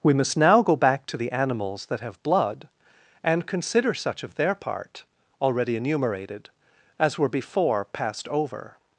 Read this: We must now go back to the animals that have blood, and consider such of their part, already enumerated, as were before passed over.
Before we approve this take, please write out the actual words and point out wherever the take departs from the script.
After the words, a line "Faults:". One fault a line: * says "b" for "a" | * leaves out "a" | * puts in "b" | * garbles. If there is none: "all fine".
We must now go back to the animals that have blood, and consider such of their part, already enumerated, as were before passed over.
Faults:
all fine